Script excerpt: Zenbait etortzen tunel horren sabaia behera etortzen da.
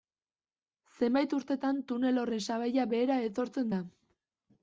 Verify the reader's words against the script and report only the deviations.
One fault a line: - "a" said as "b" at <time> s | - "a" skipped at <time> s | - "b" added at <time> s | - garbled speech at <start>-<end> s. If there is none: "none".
- "etortzen" said as "urtetan" at 1.4 s